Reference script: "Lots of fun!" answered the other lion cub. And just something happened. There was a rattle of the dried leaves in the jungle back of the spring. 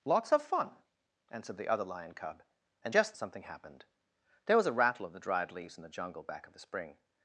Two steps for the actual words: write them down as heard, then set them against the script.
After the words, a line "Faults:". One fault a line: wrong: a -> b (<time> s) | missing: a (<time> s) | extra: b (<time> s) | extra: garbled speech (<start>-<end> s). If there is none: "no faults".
"Lots of fun!" answered the other lion cub. And just something happened. There was a rattle of the dried leaves in the jungle back of the spring.
Faults:
no faults